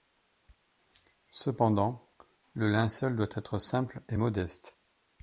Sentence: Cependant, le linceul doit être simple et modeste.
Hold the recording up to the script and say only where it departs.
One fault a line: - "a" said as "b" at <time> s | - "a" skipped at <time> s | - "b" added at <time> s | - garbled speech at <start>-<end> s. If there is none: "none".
none